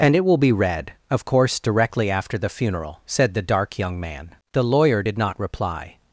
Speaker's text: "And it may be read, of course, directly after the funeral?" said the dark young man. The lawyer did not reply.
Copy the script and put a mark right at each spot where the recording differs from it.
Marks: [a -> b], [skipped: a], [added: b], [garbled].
"And it [may -> will] be read, of course, directly after the funeral?" said the dark young man. The lawyer did not reply.